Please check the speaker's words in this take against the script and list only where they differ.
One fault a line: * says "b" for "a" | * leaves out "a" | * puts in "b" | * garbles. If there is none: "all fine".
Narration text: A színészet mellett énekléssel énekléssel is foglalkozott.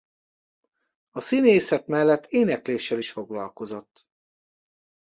* leaves out "énekléssel"